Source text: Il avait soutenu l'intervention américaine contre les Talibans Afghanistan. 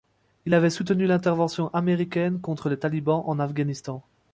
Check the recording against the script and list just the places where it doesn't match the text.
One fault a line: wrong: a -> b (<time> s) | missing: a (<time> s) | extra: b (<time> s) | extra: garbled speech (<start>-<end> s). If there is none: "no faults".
extra: en (3.3 s)